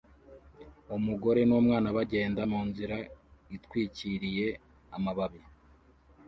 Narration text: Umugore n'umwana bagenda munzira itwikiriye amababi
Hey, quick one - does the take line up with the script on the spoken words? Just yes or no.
yes